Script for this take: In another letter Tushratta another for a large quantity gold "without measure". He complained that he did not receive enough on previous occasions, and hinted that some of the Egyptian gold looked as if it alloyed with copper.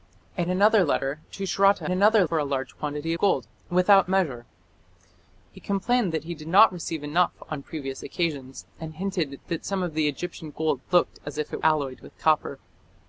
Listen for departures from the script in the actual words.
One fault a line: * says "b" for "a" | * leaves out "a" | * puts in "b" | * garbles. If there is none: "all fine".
all fine